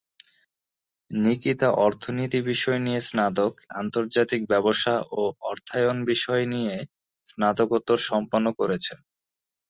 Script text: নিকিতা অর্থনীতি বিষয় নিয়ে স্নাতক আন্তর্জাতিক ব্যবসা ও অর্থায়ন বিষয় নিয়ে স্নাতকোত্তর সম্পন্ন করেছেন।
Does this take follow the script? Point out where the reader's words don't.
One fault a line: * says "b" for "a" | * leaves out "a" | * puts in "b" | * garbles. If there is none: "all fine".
all fine